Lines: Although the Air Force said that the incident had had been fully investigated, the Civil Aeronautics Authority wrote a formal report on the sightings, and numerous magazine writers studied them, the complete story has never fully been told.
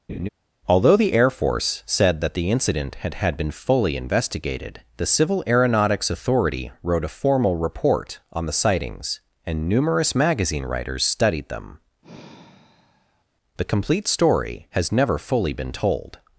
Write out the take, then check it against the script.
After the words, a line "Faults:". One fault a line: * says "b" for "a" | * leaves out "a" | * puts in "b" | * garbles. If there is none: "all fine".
Although the Air Force said that the incident had had been fully investigated, the Civil Aeronautics Authority wrote a formal report on the sightings, and numerous magazine writers studied them, the complete story has never fully been told.
Faults:
all fine